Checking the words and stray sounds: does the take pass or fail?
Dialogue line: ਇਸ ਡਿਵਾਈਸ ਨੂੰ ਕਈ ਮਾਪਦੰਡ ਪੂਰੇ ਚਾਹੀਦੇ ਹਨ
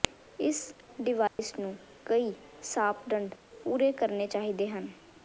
fail